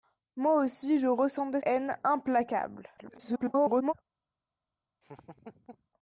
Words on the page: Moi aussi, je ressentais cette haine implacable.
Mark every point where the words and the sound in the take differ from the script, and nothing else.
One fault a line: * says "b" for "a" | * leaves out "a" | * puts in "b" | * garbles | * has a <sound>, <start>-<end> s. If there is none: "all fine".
* leaves out "cette"
* garbles
* has a laugh, 5.0-5.9 s